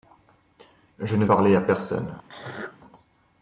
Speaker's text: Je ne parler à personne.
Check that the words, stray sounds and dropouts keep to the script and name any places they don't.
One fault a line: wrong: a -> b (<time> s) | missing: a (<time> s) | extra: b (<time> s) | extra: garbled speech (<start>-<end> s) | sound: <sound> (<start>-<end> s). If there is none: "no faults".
sound: throat clearing (2.3-2.8 s)